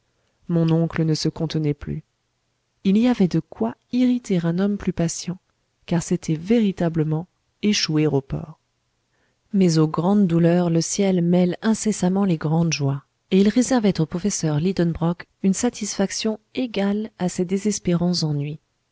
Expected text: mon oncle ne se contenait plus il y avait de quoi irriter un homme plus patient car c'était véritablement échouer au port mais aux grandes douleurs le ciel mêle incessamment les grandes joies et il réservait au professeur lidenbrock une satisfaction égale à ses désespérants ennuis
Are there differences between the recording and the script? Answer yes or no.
no